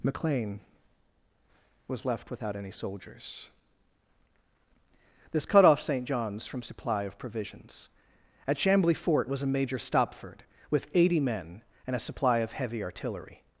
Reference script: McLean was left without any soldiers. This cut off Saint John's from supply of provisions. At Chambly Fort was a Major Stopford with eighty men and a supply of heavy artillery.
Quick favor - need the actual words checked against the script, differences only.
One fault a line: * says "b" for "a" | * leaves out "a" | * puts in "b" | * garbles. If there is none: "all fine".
all fine